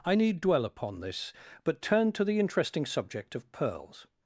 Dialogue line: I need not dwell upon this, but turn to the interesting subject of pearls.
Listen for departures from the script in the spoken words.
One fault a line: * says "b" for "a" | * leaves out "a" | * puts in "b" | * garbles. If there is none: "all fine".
* leaves out "not"